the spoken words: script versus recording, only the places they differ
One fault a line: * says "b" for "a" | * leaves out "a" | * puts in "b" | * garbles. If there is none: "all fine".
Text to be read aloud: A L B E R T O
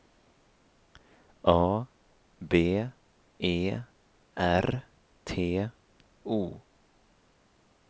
* leaves out "L"